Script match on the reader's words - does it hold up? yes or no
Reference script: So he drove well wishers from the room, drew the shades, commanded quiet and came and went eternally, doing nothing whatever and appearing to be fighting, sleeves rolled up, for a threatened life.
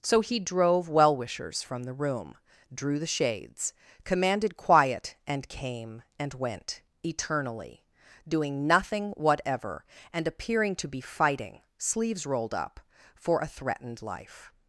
yes